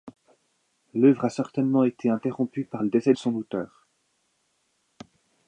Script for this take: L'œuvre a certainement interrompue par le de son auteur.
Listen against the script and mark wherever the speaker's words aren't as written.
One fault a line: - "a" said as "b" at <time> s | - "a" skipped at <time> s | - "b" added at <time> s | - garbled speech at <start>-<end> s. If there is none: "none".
- "été" added at 1.8 s
- "décès" added at 2.9 s